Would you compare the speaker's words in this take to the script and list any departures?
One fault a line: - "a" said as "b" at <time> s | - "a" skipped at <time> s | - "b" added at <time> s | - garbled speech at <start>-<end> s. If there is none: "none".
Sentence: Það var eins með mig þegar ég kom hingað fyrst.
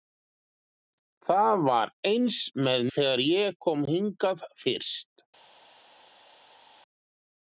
- "mig" skipped at 2.9 s